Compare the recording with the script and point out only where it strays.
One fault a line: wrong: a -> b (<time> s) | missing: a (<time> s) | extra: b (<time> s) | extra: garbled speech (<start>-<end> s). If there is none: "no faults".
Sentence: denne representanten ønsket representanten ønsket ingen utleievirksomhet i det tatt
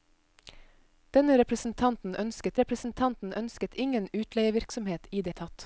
no faults